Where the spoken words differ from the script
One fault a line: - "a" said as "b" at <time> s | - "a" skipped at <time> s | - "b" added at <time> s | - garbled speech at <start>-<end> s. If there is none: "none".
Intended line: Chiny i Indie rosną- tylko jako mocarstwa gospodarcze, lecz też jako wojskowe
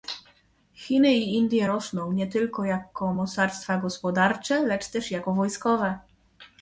- "nie" added at 2.1 s